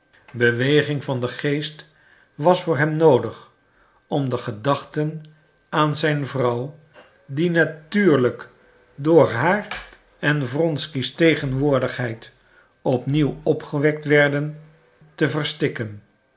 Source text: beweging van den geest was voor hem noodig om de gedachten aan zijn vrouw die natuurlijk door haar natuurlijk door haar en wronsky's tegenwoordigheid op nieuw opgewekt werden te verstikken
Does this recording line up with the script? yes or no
no